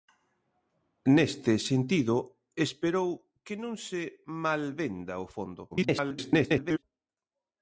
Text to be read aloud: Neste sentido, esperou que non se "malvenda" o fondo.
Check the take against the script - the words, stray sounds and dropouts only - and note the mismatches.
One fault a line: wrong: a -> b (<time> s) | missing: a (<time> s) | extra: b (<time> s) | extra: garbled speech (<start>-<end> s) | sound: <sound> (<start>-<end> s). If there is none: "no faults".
extra: garbled speech (5.7-6.8 s)